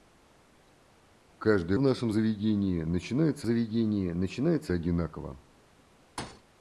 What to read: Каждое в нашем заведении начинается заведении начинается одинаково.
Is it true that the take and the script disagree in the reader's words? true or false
false